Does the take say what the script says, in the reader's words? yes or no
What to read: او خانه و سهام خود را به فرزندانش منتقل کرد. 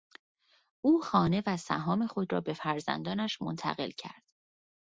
yes